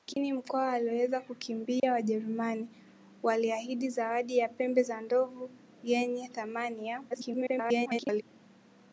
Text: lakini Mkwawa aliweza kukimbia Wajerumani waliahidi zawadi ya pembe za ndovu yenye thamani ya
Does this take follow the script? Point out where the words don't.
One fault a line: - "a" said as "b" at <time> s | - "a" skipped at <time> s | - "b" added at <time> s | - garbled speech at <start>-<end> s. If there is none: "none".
- garbled speech at 7.1-8.2 s